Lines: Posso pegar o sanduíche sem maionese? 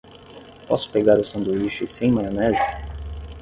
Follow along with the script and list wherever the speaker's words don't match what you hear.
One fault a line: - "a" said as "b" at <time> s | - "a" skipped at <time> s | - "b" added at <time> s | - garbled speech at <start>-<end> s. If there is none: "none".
none